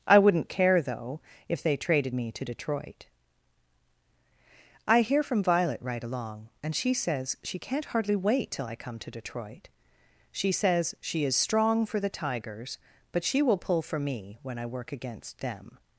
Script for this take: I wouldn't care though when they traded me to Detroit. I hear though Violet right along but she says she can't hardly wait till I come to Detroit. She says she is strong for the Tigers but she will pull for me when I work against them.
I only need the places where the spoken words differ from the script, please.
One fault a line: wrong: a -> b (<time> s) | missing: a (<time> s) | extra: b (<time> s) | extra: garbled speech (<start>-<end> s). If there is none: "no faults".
wrong: when -> if (1.5 s)
wrong: though -> from (5.2 s)
wrong: but -> and (6.6 s)